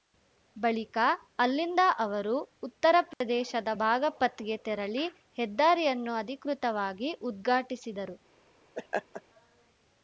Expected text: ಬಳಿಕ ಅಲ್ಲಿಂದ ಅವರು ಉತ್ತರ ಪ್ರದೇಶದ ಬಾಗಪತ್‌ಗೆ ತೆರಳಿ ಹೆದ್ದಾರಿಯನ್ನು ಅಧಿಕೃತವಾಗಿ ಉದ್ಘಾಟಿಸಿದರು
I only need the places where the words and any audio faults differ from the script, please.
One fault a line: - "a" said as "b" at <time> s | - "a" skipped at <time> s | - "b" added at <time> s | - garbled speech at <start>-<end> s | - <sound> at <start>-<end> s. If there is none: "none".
- dropout at 3.1-3.2 s
- laugh at 8.8-9.2 s